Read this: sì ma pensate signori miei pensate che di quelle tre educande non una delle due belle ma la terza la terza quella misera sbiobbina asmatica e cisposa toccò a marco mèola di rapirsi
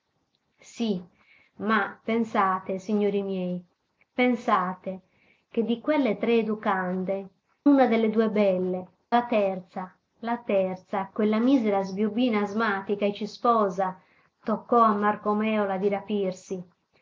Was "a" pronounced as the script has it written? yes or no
yes